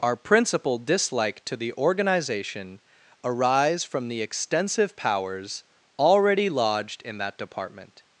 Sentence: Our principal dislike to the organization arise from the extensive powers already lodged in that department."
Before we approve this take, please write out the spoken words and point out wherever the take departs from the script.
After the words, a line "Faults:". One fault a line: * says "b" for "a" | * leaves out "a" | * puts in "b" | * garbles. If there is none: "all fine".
Our principal dislike to the organization arise from the extensive powers already lodged in that department."
Faults:
all fine